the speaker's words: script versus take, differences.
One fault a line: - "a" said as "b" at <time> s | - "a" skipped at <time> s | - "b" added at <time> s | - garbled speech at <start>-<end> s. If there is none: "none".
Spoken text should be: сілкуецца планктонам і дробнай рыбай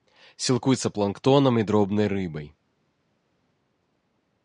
none